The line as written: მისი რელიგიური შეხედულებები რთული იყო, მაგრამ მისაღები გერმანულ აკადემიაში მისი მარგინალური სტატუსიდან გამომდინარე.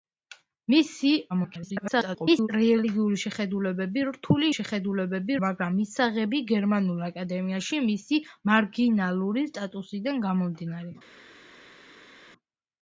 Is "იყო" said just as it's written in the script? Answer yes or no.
no